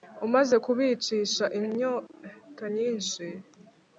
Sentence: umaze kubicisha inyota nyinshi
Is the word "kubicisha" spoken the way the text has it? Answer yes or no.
yes